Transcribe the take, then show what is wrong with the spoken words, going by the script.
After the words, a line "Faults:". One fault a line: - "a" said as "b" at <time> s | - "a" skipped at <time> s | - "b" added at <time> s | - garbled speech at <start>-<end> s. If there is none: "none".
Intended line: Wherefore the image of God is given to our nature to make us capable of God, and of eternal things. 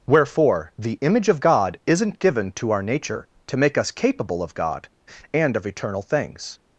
Wherefore the image of God isn't given to our nature to make us capable of God, and of eternal things.
Faults:
- "is" said as "isn't" at 1.9 s